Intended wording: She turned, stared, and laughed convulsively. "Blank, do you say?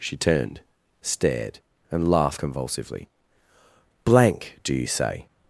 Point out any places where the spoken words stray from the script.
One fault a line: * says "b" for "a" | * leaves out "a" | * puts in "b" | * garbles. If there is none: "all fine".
all fine